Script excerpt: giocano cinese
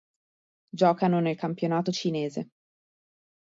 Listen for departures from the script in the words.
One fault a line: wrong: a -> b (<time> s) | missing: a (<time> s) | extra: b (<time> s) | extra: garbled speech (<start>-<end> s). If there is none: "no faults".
extra: nel campionato (1.2 s)